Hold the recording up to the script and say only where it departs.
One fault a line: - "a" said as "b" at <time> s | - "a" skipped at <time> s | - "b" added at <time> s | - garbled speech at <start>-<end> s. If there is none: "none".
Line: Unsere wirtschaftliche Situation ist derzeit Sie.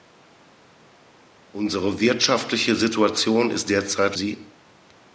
none